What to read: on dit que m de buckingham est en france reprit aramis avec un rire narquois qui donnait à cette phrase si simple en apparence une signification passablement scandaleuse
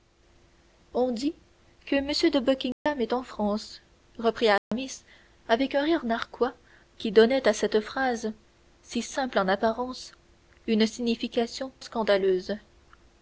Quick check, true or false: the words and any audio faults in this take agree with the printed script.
false